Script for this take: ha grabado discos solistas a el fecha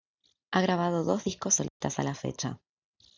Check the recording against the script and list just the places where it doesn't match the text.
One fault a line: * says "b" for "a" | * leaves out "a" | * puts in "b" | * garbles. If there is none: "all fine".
* puts in "dos"
* says "la" for "el"